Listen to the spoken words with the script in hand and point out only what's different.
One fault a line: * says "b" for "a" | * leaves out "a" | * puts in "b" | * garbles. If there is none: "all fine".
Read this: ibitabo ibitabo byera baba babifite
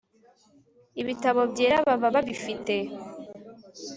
* leaves out "ibitabo"